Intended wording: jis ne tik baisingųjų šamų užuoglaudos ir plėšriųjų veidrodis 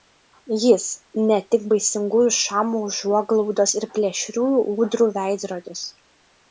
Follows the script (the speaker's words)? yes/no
no